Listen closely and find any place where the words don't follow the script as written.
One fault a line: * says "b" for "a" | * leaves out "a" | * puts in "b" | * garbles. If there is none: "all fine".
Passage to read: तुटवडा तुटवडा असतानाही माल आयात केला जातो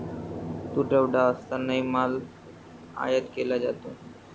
* leaves out "तुटवडा"